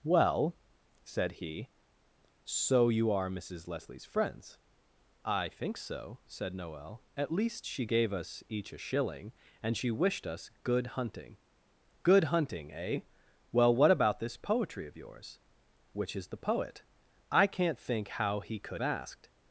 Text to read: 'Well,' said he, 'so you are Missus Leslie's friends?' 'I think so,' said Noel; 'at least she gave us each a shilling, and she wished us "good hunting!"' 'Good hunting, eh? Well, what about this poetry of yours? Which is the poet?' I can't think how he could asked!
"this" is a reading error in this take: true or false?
false